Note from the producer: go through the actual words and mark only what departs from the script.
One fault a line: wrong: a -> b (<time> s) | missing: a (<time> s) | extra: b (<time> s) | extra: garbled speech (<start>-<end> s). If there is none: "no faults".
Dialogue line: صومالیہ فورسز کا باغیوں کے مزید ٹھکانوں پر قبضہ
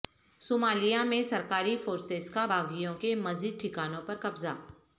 extra: میں سرکاری (1.0 s)